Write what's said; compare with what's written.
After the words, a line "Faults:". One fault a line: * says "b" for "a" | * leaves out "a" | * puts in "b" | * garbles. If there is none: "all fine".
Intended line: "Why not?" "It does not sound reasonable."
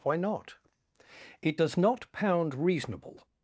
"Why not?" "It does not pound reasonable."
Faults:
* says "pound" for "sound"